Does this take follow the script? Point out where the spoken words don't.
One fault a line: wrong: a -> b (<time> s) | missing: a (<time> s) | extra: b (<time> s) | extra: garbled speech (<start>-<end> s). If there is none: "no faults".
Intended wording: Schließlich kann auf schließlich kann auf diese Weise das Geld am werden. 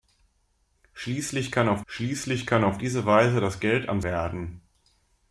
no faults